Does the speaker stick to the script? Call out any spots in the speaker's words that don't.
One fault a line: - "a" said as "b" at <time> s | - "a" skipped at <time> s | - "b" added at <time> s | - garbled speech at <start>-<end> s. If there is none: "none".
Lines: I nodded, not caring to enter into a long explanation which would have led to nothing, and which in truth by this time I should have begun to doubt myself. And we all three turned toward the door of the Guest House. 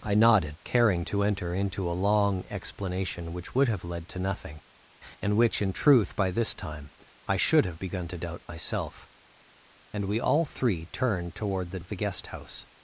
- "not" skipped at 0.6 s
- "door" skipped at 11.8 s